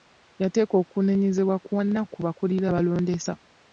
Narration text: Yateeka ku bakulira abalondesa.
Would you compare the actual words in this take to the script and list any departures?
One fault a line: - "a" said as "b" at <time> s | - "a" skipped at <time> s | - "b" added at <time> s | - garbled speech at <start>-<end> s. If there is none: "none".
- "okunenyezebwa kwonna" added at 0.8 s